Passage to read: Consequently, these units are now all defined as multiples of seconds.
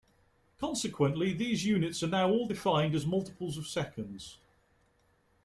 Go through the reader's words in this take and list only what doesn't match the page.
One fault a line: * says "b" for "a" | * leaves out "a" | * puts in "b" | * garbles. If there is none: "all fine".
all fine